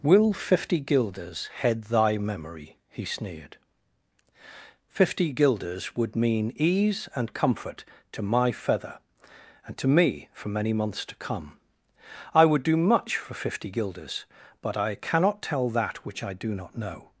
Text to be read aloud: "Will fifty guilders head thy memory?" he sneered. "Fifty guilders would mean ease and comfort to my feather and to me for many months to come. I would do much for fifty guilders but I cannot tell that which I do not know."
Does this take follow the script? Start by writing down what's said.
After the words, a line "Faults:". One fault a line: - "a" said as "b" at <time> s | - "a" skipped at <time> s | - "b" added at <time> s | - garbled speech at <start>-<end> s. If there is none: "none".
"Will fifty guilders head thy memory?" he sneered. "Fifty guilders would mean ease and comfort to my feather and to me for many months to come. I would do much for fifty guilders but I cannot tell that which I do not know."
Faults:
none